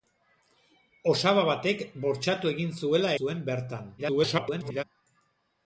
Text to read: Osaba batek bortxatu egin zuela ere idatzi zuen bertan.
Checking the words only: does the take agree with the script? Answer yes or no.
no